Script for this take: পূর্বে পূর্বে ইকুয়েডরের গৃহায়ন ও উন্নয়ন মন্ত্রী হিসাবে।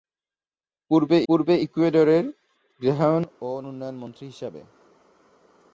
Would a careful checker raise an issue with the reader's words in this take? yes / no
no